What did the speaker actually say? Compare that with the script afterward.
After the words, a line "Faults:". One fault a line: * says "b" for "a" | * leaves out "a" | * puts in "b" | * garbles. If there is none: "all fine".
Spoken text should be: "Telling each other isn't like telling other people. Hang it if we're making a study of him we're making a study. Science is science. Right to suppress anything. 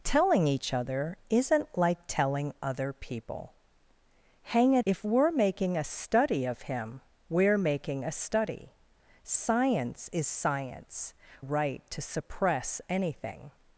"Telling each other isn't like telling other people. Hang it if we're making a study of him we're making a study. Science is science. Right to suppress anything.
Faults:
all fine